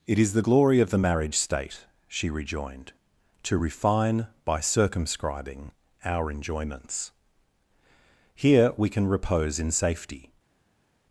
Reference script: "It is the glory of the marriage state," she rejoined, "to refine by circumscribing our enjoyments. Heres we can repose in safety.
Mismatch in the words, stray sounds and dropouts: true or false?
true